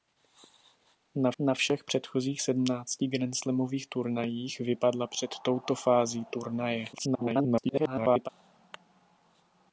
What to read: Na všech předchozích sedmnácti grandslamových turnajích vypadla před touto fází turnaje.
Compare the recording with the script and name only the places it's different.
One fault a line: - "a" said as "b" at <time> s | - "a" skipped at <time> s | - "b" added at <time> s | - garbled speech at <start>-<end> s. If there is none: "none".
- "na" added at 1.4 s
- garbled speech at 6.9-8.3 s